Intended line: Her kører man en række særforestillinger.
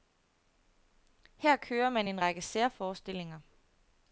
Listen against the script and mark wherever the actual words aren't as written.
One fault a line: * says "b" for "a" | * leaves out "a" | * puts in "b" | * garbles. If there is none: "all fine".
all fine